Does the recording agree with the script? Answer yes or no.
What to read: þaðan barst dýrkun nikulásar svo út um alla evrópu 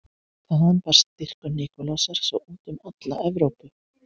yes